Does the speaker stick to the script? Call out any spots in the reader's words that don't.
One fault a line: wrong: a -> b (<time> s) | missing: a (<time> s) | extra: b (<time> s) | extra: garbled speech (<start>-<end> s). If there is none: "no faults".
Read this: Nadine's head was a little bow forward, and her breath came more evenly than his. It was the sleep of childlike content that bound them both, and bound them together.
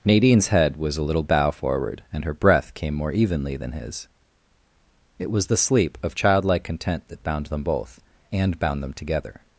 no faults